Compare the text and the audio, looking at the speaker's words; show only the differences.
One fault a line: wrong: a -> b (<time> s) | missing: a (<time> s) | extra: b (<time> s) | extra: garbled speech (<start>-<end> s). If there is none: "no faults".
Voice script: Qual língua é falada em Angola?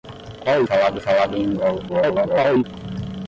wrong: língua -> falada (0.6 s)
extra: garbled speech (1.9-2.6 s)